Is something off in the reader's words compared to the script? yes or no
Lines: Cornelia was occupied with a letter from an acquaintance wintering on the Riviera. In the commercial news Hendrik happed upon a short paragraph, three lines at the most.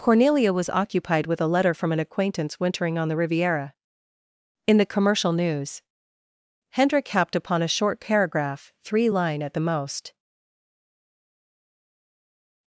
yes